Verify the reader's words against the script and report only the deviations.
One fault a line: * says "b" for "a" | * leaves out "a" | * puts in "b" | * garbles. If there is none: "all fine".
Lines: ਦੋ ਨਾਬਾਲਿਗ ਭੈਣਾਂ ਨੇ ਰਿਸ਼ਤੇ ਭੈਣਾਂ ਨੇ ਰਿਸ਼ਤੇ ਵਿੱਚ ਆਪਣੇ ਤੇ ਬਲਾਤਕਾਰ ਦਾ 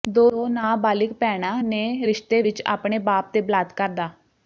* leaves out "ਭੈਣਾਂ ਨੇ ਰਿਸ਼ਤੇ"
* puts in "ਬਾਪ"